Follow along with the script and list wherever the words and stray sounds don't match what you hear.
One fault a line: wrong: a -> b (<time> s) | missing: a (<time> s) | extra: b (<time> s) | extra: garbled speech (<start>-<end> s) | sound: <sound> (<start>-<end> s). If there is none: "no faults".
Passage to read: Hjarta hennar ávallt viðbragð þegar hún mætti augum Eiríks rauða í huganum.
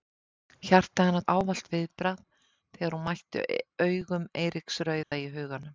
sound: dropout (5.0-5.1 s)